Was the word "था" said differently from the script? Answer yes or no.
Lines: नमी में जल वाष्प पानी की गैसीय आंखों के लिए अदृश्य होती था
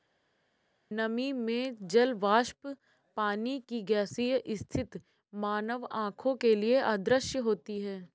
yes